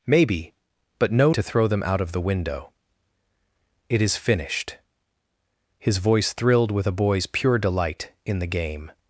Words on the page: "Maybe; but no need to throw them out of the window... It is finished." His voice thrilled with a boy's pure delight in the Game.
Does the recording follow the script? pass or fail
fail